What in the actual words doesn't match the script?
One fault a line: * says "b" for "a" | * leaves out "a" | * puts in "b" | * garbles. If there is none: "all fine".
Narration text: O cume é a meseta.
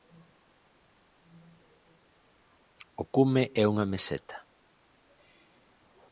* says "unha" for "a"